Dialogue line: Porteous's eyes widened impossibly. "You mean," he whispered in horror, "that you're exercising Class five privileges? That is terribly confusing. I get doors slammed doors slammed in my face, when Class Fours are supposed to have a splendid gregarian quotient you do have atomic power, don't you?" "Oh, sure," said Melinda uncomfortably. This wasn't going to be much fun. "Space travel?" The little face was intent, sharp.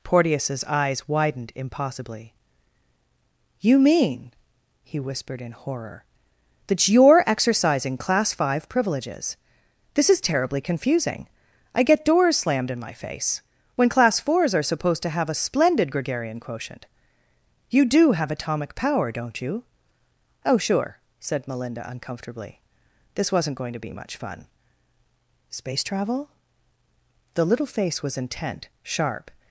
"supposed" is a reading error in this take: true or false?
false